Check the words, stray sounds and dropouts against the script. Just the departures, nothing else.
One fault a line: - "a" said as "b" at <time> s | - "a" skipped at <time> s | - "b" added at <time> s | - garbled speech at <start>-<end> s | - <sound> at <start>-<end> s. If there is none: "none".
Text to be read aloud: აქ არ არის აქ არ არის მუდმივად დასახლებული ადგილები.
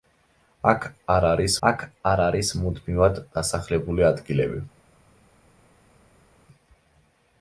none